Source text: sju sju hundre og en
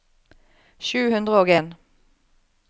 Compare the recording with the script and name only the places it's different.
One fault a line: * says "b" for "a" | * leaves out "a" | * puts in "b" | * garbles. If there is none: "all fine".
* leaves out "sju"